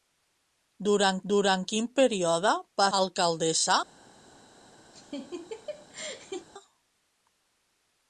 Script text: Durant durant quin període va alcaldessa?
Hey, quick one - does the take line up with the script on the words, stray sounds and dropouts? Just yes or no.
no